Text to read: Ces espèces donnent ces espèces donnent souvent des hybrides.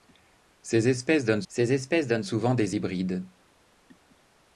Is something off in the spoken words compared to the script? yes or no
no